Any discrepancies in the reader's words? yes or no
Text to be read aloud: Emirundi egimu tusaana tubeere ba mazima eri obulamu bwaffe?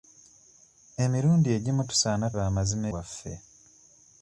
yes